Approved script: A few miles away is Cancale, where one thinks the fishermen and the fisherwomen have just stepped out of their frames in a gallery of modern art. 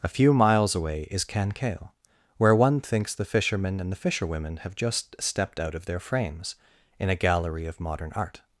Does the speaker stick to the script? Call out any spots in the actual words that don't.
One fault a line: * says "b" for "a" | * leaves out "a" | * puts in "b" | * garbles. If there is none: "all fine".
all fine